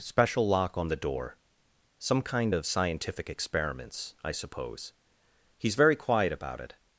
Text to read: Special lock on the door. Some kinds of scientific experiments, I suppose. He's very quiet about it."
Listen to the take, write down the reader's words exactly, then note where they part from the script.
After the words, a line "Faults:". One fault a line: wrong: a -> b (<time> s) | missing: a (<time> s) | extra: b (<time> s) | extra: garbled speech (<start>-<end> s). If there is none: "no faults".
Special lock on the door. Some kind of scientific experiments, I suppose. He's very quiet about it."
Faults:
wrong: kinds -> kind (2.2 s)